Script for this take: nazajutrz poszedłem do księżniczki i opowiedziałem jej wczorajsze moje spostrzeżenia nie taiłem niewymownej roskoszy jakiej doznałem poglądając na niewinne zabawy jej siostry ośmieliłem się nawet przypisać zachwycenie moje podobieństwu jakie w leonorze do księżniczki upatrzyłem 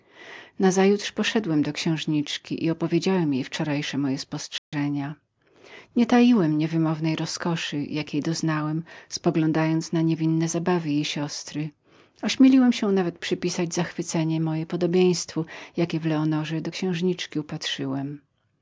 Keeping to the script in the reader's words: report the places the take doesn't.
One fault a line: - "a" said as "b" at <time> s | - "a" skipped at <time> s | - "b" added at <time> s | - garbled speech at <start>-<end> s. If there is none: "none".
none